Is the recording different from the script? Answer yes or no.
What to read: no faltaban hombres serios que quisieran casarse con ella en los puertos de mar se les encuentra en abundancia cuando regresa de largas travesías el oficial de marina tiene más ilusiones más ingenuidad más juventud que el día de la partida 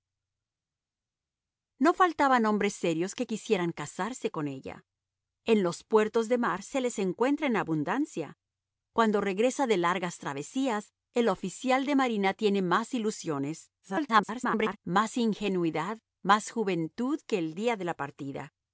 yes